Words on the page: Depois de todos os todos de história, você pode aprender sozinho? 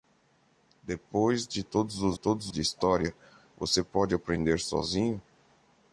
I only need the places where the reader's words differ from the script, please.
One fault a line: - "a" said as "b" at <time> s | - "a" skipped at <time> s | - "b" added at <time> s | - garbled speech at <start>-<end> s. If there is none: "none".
none